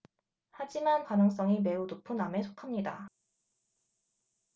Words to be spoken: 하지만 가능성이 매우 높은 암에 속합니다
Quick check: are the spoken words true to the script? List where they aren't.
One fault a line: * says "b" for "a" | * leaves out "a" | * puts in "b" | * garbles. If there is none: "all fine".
all fine